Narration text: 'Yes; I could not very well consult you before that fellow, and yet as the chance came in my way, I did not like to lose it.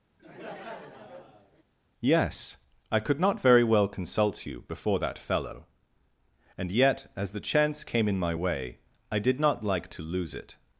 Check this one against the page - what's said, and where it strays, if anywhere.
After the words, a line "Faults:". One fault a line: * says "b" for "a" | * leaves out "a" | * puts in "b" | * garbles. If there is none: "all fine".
'Yes; I could not very well consult you before that fellow, and yet as the chance came in my way, I did not like to lose it.
Faults:
all fine